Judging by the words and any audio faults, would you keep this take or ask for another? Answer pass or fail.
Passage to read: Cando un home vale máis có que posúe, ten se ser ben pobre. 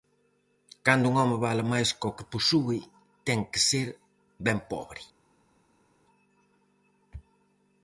fail